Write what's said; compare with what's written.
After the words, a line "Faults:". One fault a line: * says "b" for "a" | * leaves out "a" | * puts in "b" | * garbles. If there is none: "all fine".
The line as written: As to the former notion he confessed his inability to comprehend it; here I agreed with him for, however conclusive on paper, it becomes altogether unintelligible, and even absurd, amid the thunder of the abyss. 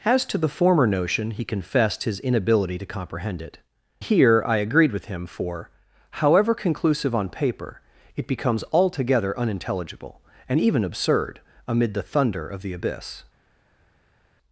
As to the former notion he confessed his inability to comprehend it; here I agreed with him for, however conclusive on paper, it becomes altogether unintelligible, and even absurd, amid the thunder of the abyss.
Faults:
all fine